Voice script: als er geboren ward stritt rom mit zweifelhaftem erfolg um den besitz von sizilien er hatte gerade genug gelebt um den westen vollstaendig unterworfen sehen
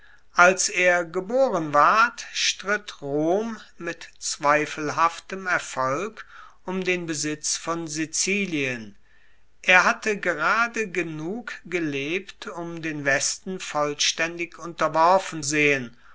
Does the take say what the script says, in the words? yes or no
yes